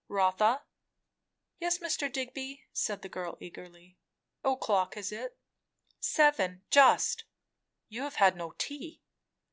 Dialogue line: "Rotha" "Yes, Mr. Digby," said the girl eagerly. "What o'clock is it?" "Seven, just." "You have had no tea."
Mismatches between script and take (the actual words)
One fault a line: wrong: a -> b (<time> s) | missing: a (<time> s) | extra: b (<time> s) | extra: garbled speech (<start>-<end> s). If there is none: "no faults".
missing: What (4.0 s)